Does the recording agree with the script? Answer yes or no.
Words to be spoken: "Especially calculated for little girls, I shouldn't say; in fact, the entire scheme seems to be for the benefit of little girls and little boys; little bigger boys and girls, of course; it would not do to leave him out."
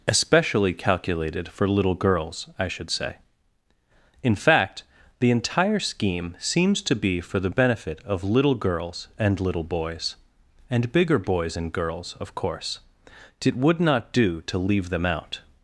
no